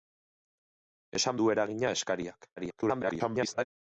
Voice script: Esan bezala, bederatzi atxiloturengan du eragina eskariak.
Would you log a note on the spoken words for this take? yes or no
yes